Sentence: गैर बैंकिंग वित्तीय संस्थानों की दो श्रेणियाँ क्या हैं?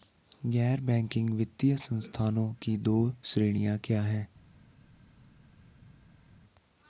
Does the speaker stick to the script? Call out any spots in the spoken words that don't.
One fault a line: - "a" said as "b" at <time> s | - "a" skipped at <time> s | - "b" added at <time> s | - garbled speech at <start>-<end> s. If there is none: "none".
none